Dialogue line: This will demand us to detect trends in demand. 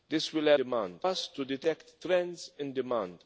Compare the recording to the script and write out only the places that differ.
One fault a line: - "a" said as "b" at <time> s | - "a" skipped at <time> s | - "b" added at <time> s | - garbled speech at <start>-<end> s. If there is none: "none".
none